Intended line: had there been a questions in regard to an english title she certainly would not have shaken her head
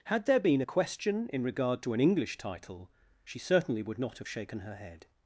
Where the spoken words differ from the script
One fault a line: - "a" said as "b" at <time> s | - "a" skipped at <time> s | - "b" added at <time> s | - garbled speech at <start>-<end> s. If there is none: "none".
- "questions" said as "question" at 0.6 s